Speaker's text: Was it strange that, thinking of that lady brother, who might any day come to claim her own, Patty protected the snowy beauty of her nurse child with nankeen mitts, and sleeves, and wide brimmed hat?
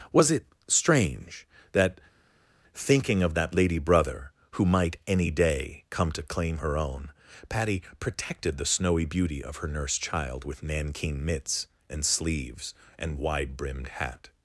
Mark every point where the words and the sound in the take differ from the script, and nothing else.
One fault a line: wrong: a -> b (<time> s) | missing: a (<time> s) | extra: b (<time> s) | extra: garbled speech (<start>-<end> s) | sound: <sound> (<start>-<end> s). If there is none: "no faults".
no faults